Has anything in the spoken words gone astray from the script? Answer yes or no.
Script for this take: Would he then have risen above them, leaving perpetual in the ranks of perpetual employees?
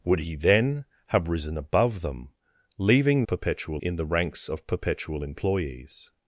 no